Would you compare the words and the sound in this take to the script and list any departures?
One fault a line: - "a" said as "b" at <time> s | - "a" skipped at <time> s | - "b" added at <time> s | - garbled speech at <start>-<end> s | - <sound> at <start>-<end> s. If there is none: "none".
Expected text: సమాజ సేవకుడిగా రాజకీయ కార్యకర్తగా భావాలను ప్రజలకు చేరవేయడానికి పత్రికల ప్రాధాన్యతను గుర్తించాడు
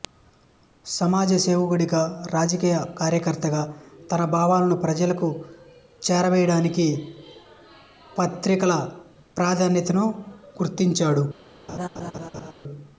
- "తన" added at 4.1 s
- laugh at 11.7-12.5 s